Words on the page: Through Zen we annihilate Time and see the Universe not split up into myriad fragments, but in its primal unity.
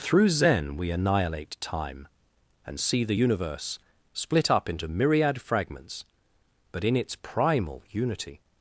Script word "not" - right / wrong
wrong